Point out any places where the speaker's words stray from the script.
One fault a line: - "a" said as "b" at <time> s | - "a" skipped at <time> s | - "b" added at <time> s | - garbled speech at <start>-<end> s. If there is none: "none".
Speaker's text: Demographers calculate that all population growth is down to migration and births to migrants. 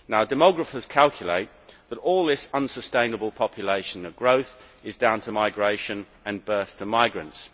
- "this unsustainable" added at 2.2 s